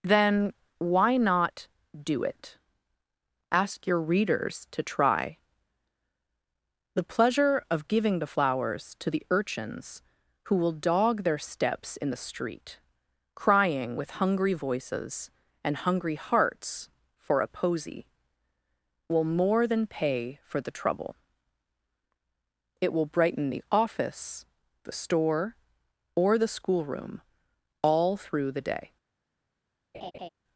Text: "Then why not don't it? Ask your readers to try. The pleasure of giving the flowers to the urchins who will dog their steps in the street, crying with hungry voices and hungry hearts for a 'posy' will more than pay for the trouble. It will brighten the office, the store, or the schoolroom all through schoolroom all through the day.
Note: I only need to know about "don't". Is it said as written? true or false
false